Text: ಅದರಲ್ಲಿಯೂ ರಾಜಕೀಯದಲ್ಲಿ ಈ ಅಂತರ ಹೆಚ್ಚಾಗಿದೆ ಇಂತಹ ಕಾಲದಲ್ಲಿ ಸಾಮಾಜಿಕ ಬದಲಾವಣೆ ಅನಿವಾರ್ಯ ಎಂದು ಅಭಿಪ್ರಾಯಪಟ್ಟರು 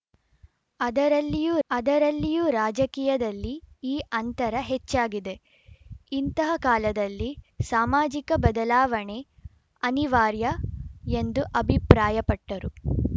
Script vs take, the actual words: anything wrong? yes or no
yes